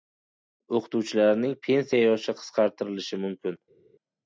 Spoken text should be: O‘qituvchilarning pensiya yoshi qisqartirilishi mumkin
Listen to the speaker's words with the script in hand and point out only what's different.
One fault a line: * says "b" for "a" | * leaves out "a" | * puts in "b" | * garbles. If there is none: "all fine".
all fine